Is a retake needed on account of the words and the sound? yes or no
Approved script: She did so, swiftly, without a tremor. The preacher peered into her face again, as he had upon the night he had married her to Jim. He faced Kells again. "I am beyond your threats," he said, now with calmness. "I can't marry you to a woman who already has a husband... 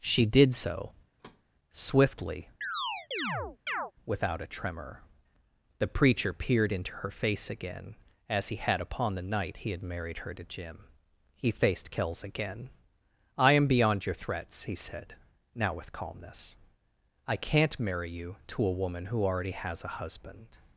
yes